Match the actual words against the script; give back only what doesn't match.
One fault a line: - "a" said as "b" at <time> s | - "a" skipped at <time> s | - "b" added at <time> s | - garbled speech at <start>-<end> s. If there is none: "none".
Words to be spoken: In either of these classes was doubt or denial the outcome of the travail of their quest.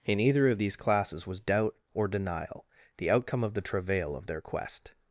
none